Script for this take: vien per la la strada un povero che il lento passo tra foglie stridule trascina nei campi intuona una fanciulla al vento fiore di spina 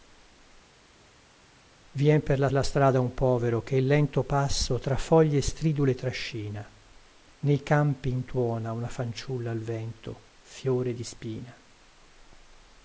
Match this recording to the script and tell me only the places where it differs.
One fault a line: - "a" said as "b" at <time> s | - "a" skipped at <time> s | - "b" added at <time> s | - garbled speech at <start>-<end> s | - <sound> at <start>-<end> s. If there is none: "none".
none